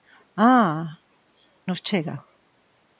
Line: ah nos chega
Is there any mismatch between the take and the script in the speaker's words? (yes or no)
no